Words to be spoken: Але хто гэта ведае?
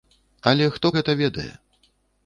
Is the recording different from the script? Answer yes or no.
no